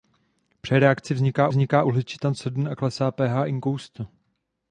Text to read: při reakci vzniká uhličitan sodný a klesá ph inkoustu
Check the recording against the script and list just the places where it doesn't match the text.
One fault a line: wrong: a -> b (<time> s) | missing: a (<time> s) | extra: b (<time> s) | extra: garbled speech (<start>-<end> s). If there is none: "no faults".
extra: vzniká (1.5 s)